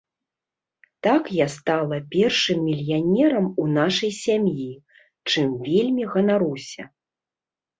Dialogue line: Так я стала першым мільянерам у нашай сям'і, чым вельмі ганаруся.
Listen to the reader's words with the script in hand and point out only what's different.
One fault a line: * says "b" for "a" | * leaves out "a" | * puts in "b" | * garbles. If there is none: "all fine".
all fine